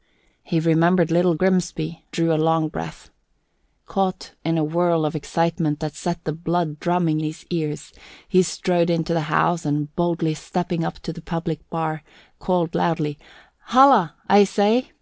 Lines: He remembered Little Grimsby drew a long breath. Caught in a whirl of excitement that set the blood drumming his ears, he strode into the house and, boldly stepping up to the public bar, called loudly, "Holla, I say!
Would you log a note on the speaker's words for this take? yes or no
no